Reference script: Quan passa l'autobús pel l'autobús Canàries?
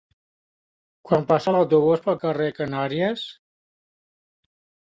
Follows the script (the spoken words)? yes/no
no